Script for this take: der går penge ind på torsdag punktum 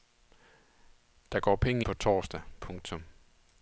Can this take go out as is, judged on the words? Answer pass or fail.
fail